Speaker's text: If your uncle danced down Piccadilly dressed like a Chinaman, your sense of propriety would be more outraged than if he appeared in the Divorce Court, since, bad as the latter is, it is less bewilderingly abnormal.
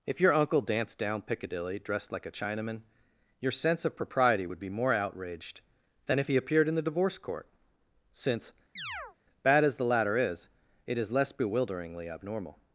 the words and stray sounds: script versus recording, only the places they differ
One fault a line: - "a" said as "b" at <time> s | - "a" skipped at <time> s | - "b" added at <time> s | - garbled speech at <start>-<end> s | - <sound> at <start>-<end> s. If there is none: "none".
- chirp at 8.8-9.2 s